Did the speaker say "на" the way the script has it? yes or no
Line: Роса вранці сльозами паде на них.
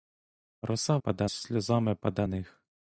no